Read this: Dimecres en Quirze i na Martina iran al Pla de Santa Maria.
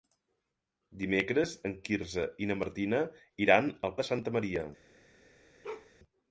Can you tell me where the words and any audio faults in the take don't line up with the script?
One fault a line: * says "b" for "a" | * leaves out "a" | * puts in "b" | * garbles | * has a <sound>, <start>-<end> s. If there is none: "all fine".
* leaves out "Pla"
* has a bark, 5.6-5.9 s